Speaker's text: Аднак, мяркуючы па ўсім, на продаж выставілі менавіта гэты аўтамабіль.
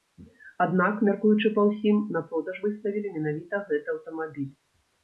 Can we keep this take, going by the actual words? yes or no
yes